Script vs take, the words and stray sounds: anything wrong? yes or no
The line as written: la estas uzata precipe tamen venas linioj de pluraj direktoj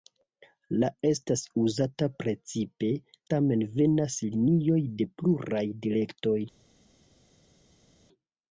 no